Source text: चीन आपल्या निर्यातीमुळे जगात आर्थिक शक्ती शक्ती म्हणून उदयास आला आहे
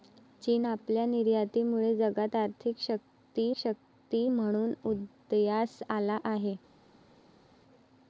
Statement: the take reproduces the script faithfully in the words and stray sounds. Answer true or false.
true